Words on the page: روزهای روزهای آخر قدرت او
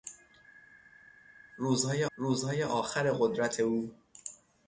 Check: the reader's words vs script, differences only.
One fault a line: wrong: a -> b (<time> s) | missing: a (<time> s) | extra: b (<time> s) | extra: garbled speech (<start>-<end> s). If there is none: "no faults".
no faults